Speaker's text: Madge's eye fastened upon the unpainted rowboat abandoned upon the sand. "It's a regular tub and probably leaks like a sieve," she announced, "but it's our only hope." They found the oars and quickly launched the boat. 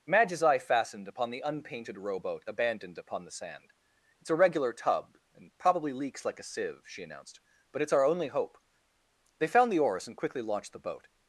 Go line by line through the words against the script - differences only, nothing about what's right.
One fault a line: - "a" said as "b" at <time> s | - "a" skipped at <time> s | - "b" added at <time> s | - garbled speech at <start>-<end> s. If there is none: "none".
none